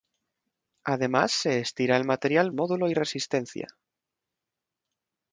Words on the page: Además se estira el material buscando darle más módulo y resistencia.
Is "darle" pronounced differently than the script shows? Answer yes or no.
yes